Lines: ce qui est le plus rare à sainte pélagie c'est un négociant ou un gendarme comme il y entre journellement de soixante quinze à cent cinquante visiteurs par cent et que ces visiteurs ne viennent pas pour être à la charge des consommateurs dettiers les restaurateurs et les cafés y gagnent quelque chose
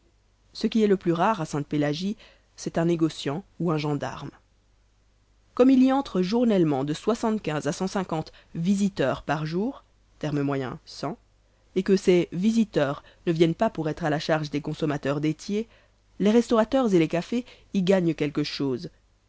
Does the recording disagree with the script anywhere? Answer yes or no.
yes